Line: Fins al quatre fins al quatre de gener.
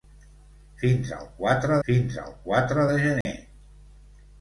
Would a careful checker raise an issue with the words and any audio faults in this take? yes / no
yes